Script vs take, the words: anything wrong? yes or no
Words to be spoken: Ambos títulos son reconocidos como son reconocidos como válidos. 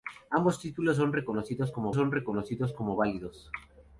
no